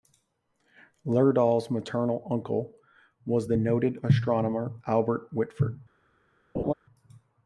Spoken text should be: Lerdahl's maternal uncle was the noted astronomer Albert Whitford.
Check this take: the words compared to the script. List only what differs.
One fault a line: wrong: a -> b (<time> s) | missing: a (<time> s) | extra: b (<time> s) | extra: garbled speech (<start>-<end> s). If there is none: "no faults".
no faults